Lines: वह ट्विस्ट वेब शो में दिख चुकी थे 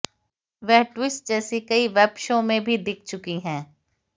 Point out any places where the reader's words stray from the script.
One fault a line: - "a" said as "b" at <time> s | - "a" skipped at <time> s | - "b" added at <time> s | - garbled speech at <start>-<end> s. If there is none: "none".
- "जैसी कई" added at 1.3 s
- "भी" added at 2.6 s
- "थे" said as "हैं" at 3.4 s